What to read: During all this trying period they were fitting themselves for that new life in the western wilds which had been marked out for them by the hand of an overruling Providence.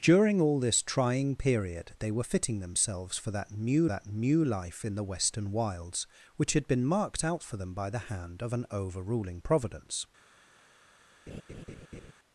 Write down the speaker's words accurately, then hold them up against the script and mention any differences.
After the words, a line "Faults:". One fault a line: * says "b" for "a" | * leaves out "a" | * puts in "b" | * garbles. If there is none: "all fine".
During all this trying period they were fitting themselves for that new that new life in the western wilds which had been marked out for them by the hand of an overruling Providence.
Faults:
* puts in "that new"